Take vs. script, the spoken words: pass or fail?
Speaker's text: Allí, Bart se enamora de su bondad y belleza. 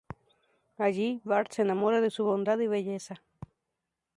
pass